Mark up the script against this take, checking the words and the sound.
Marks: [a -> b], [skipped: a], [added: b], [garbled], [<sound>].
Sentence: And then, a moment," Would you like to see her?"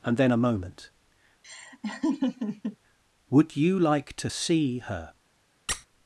And then, a moment," [laugh] Would you like to see her?" [squeak]